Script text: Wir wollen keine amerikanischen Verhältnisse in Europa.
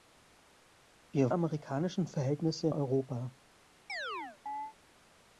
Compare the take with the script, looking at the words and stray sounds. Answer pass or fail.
fail